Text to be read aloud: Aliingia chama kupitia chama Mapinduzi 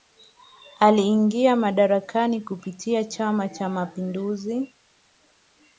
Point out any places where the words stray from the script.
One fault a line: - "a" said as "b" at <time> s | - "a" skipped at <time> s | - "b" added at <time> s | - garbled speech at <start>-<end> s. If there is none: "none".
- "chama" said as "madarakani" at 1.6 s
- "Cha" added at 3.5 s